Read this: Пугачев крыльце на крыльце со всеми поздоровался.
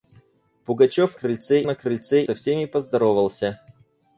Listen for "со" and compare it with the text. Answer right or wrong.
right